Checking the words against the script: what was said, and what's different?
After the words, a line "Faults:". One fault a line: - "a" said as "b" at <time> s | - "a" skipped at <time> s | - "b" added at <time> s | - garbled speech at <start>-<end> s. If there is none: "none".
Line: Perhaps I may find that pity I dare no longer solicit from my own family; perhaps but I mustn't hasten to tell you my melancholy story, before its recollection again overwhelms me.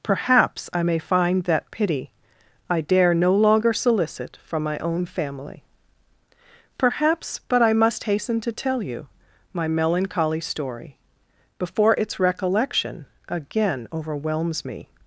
Perhaps I may find that pity I dare no longer solicit from my own family; perhaps but I must hasten to tell you my melancholy story, before its recollection again overwhelms me.
Faults:
- "mustn't" said as "must" at 7.7 s